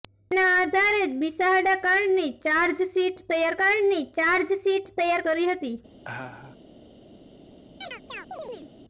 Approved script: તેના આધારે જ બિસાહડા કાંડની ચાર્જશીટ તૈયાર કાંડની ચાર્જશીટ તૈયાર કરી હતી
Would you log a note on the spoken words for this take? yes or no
no